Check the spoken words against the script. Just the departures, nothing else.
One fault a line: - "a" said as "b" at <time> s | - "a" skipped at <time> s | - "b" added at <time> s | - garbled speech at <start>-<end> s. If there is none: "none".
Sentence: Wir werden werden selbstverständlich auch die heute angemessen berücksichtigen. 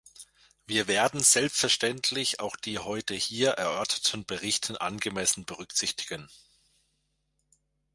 - "werden" skipped at 1.2 s
- "hier erörterten Berichte" added at 3.1 s